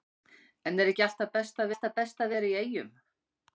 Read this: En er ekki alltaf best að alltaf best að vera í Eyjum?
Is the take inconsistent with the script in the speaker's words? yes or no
no